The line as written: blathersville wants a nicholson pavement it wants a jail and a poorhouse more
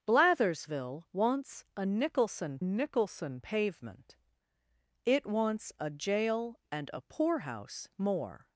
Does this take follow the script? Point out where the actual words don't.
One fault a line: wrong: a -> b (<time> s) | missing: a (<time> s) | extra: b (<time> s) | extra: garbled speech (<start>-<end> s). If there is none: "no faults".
extra: nicholson (2.6 s)